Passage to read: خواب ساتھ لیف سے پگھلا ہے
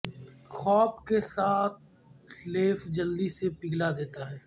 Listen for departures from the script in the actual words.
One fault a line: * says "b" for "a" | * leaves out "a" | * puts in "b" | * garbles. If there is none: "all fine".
* puts in "کے"
* puts in "جلدی"
* puts in "دیتا"